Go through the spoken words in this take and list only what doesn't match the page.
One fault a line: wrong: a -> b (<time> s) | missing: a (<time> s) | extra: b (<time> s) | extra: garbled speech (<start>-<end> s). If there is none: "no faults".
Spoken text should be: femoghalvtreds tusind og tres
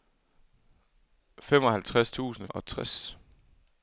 no faults